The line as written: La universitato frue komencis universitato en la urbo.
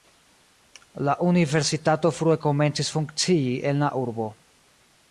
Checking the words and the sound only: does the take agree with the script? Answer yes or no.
no